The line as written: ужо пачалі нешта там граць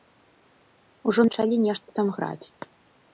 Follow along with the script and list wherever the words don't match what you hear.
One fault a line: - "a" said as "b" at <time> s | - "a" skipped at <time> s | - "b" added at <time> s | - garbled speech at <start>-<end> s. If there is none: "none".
none